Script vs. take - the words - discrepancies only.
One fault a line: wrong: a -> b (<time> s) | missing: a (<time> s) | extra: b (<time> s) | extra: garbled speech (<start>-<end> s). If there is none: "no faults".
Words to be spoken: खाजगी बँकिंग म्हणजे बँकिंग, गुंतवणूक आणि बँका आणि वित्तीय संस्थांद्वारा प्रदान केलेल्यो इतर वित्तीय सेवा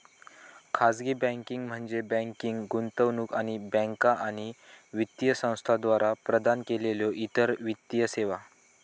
no faults